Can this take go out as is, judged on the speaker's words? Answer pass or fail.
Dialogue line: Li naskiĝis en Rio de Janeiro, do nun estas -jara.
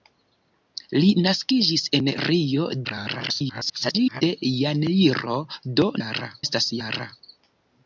fail